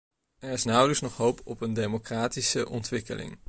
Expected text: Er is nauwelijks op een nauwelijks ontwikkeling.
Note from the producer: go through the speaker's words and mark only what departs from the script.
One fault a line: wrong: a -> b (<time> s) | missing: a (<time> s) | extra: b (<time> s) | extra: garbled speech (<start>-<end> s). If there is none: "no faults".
extra: nog hoop (1.0 s)
wrong: nauwelijks -> democratische (1.7 s)